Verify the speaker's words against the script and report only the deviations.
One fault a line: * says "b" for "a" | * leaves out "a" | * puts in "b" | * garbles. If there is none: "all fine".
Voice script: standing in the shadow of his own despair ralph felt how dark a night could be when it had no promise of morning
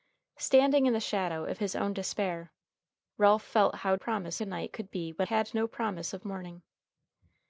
* says "promise" for "dark"
* leaves out "it"